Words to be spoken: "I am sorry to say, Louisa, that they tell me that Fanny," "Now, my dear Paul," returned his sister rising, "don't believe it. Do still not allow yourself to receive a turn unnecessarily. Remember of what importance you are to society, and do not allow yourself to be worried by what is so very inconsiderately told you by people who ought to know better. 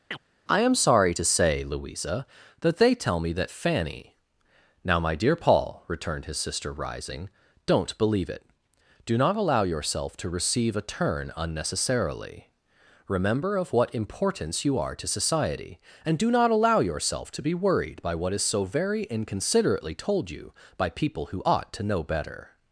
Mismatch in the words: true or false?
true